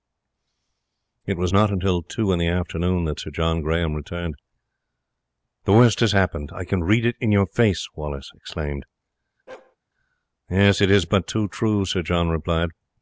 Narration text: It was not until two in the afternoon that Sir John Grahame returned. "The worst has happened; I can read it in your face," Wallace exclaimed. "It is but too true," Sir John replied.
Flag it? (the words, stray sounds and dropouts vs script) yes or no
yes